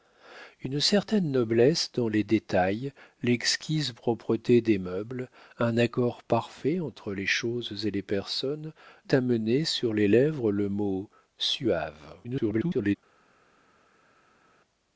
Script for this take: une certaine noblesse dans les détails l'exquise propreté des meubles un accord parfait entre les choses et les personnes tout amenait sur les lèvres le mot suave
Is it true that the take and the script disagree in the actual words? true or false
true